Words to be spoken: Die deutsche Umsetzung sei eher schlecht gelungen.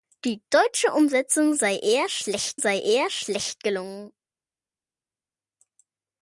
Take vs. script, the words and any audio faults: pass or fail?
fail